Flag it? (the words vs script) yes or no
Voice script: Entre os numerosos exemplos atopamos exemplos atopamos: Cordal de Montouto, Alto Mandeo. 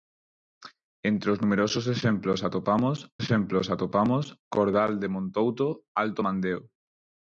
no